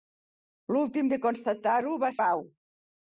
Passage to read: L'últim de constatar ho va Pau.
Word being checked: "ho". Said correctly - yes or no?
yes